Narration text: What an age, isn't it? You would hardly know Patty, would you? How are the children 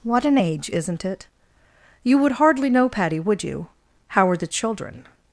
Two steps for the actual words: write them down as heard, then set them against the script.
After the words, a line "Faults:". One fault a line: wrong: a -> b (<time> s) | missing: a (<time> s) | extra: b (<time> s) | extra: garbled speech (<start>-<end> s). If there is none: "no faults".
What an age, isn't it? You would hardly know Patty, would you? How are the children
Faults:
no faults